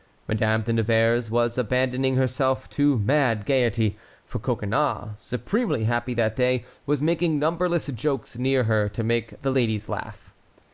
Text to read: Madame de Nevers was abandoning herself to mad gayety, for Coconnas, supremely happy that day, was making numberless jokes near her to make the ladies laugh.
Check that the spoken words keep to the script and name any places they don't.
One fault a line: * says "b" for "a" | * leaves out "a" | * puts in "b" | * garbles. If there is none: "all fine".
all fine